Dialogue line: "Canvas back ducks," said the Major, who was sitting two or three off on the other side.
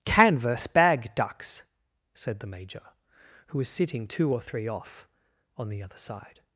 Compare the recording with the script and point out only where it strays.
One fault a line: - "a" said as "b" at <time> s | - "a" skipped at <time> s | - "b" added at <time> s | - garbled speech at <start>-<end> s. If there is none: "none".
- "back" said as "bag" at 0.7 s